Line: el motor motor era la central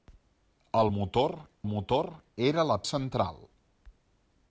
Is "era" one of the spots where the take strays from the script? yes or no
no